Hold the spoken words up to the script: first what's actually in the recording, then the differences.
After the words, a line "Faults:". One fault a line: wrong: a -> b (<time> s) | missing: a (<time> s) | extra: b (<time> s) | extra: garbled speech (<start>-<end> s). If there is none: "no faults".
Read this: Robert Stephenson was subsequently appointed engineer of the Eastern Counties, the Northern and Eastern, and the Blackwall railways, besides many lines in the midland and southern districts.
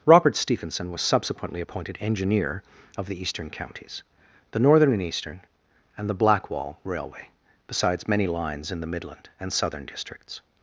Robert Stephenson was subsequently appointed engineer of the Eastern Counties, the Northern and Eastern, and the Blackwall railway, besides many lines in the midland and southern districts.
Faults:
wrong: railways -> railway (6.8 s)